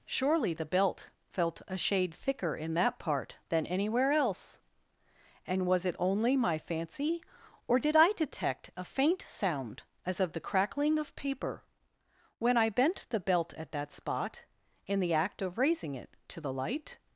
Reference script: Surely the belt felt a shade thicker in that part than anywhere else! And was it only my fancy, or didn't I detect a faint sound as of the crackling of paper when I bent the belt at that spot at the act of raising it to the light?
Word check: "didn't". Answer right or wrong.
wrong